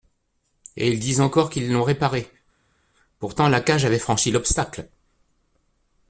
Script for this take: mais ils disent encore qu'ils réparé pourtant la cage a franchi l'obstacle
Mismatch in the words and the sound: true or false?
true